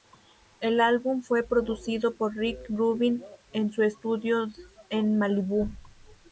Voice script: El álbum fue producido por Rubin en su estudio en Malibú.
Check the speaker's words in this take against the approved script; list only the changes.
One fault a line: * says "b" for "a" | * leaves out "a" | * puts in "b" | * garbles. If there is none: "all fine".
* puts in "Rick"